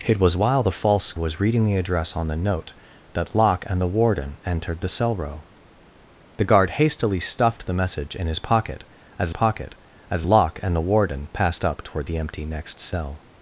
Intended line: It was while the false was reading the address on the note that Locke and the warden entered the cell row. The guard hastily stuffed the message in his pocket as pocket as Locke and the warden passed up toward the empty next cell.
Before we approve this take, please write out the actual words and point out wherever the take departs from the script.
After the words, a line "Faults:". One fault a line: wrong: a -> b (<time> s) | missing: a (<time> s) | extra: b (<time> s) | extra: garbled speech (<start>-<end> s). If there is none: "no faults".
It was while the false was reading the address on the note that Locke and the warden entered the cell row. The guard hastily stuffed the message in his pocket as pocket as Locke and the warden passed up toward the empty next cell.
Faults:
no faults